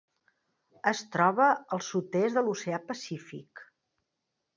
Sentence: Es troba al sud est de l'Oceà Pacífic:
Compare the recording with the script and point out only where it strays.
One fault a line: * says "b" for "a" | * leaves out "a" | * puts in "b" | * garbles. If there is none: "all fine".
all fine